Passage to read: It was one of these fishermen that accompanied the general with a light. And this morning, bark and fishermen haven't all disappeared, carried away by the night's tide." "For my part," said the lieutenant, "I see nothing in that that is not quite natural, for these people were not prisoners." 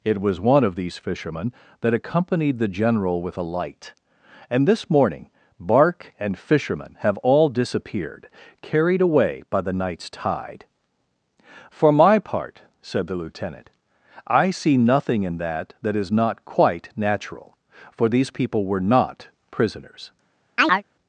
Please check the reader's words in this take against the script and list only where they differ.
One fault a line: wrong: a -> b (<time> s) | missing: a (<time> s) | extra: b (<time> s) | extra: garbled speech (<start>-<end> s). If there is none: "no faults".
wrong: haven't -> have (7.0 s)